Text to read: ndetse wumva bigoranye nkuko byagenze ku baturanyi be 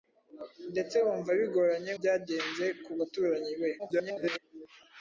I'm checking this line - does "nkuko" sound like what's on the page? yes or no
no